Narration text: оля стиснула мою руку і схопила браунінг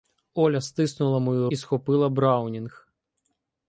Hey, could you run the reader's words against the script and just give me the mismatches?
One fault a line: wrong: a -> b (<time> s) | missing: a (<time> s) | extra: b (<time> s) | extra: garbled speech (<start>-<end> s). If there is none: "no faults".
missing: руку (1.5 s)